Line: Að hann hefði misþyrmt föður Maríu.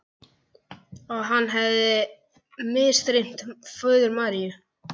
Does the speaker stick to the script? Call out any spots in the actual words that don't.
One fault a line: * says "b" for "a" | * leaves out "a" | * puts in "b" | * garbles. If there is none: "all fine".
all fine